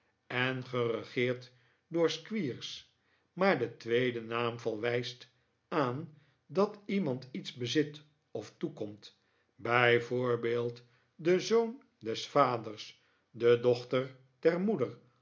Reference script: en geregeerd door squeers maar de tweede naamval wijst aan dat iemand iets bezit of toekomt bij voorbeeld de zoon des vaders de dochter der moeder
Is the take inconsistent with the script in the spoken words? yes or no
no